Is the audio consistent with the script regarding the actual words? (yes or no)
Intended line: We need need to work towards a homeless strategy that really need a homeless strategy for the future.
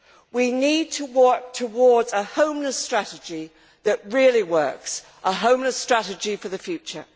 no